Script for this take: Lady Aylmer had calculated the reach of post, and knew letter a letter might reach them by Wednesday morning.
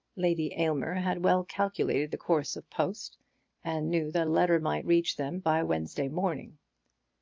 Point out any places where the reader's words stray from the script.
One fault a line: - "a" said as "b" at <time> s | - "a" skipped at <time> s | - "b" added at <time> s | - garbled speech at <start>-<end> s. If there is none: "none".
- "well" added at 1.2 s
- "reach" said as "course" at 2.2 s
- "letter" said as "that" at 4.1 s